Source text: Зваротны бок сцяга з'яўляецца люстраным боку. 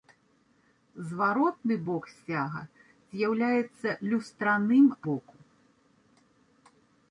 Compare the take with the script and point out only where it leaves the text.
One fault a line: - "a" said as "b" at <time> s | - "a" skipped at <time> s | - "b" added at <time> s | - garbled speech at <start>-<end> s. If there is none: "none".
none